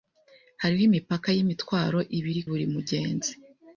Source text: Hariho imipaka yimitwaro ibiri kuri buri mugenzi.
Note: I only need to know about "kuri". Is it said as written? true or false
false